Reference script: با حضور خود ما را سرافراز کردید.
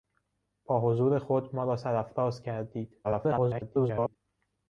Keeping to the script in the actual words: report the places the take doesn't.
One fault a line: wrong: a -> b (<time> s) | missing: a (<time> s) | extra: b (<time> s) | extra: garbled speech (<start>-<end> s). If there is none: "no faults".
extra: garbled speech (3.0-4.2 s)